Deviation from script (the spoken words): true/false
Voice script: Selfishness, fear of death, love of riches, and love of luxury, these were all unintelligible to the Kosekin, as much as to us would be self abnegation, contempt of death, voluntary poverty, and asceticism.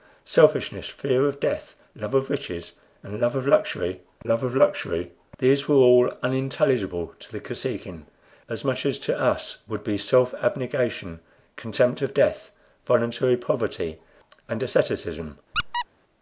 true